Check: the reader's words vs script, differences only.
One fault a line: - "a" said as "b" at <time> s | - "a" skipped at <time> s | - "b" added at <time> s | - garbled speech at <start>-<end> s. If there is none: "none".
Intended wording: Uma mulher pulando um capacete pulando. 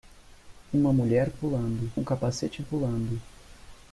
none